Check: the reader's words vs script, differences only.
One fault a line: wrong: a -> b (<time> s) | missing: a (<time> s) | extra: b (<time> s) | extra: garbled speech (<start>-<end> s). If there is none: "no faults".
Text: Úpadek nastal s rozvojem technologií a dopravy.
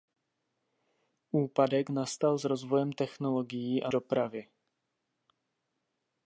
no faults